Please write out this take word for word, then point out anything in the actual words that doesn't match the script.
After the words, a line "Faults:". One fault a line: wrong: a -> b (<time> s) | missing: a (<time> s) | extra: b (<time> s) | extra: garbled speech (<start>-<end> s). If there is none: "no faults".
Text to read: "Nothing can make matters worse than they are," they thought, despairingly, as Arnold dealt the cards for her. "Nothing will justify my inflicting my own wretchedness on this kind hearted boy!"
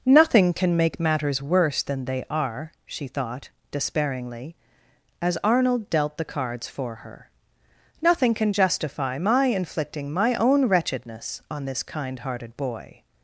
"Nothing can make matters worse than they are," she thought, despairingly, as Arnold dealt the cards for her. "Nothing can justify my inflicting my own wretchedness on this kind hearted boy!"
Faults:
wrong: they -> she (2.9 s)
wrong: will -> can (8.3 s)